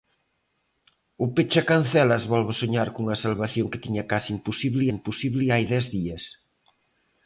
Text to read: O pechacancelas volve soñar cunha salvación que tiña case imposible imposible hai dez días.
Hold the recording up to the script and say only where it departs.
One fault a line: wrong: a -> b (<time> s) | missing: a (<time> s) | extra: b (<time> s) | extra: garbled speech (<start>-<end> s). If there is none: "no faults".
no faults